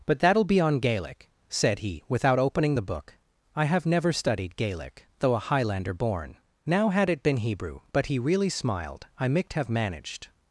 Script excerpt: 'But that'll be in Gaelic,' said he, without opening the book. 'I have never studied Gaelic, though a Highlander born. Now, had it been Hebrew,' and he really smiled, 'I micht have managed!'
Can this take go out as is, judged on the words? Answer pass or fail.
fail